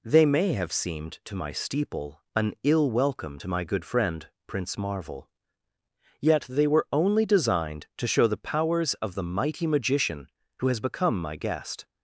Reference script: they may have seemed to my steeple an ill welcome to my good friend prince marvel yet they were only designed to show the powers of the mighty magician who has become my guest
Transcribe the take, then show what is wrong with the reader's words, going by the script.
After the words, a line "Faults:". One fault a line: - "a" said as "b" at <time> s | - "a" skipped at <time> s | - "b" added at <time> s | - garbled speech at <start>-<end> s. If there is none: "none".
they may have seemed to my steeple an ill welcome to my good friend prince marvel yet they were only designed to show the powers of the mighty magician who has become my guest
Faults:
none